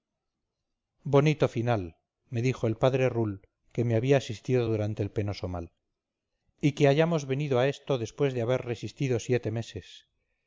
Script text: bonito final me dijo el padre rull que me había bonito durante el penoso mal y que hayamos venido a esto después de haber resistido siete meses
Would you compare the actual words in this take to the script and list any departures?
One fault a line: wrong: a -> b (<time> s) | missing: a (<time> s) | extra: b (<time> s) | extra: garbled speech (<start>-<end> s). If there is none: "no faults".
wrong: bonito -> asistido (4.2 s)